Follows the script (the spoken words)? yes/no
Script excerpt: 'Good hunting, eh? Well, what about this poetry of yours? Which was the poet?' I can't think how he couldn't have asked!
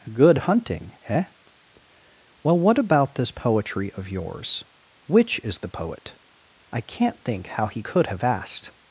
no